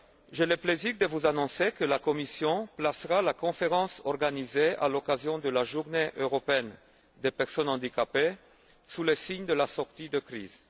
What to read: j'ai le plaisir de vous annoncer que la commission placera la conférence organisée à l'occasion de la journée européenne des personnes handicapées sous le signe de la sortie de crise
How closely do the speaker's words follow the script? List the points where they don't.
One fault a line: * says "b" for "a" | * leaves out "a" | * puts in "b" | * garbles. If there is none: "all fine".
all fine